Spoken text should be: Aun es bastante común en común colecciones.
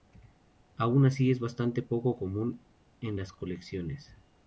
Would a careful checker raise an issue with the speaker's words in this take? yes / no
yes